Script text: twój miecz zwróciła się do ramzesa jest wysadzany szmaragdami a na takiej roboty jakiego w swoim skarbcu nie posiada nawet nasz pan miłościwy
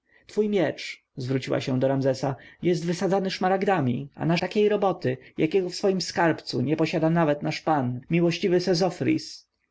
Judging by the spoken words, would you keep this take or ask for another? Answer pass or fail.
pass